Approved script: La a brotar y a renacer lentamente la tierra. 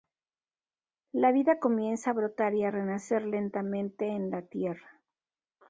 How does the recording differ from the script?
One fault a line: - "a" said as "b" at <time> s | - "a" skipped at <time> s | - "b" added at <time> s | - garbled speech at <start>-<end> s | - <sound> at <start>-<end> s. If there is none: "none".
- "vida comienza" added at 1.3 s
- "en" added at 4.1 s